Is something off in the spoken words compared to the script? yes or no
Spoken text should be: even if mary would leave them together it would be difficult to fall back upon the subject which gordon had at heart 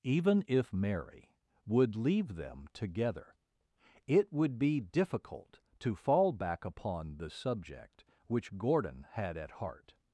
no